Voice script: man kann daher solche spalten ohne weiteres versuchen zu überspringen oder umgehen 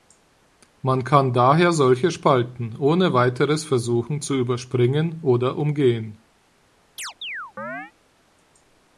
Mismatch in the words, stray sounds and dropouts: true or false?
true